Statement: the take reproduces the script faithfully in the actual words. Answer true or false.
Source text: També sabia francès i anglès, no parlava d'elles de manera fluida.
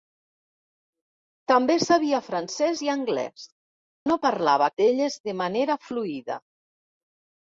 true